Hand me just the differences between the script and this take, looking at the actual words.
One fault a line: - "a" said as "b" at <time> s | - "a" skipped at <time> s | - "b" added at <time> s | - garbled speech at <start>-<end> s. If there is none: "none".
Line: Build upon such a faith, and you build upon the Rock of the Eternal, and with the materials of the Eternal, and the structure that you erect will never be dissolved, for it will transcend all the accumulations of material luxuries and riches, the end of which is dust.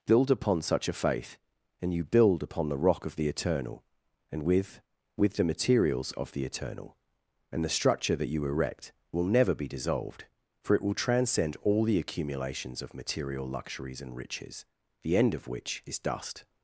- "with" added at 5.2 s